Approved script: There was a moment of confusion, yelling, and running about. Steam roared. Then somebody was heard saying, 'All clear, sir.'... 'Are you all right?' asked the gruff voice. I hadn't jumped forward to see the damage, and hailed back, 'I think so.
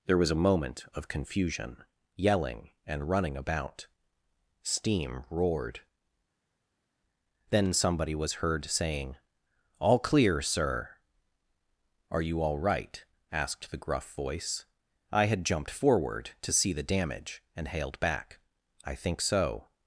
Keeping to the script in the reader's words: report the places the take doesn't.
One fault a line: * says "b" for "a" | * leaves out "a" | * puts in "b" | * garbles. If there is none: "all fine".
* says "had" for "hadn't"